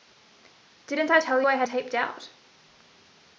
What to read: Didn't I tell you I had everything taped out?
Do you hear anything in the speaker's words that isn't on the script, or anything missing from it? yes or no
yes